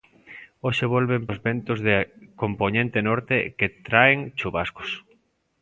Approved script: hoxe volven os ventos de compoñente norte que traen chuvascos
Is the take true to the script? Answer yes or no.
yes